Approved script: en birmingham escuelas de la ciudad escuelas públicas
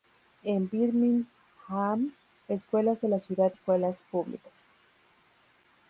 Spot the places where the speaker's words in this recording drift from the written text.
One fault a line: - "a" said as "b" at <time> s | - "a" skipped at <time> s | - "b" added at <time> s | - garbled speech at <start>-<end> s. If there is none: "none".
none